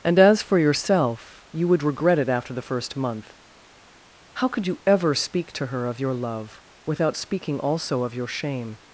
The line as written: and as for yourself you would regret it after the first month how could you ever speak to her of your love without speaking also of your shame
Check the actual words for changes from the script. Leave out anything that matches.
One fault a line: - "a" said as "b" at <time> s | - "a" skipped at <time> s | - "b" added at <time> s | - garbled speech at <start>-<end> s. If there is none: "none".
none